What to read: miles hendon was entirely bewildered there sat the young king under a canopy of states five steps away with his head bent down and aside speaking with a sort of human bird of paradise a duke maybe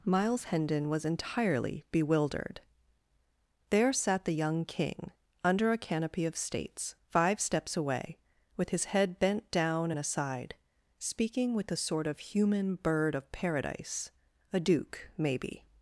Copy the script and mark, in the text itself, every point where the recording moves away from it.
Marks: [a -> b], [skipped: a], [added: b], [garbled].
miles hendon was entirely bewildered there sat the young king under a canopy of states five steps away with his head bent down and aside speaking with a sort of human bird of paradise a duke maybe